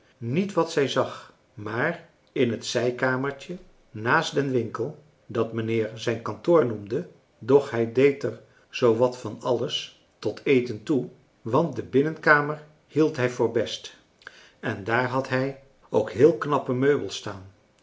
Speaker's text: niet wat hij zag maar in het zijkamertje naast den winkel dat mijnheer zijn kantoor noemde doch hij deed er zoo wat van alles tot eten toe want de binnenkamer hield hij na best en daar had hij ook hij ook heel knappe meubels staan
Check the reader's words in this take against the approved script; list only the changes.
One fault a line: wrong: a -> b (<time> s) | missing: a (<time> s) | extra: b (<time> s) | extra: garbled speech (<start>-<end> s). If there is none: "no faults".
wrong: hij -> zij (0.7 s)
wrong: na -> voor (13.3 s)
missing: hij ook (16.1 s)